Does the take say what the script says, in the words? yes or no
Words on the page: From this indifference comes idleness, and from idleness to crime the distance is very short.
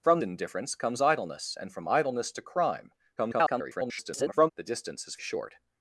no